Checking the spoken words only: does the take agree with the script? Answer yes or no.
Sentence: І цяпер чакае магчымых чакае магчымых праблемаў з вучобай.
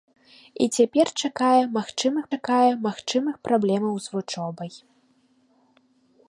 yes